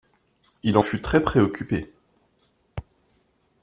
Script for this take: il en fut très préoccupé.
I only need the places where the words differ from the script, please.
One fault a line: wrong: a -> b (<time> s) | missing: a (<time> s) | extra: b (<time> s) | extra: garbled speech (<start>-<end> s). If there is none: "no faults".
no faults